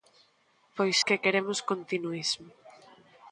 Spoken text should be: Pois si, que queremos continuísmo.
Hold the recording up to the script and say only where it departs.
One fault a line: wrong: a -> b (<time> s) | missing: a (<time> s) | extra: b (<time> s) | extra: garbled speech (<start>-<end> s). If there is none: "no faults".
missing: si (0.9 s)